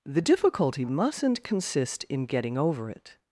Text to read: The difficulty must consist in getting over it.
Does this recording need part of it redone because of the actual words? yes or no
yes